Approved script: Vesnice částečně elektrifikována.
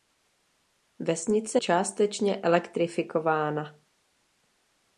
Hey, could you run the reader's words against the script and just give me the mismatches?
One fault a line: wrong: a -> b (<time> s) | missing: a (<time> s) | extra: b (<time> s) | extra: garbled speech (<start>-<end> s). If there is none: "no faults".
no faults